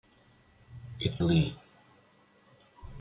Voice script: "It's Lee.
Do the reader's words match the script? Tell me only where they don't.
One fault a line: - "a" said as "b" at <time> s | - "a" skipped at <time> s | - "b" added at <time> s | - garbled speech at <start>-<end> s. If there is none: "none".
none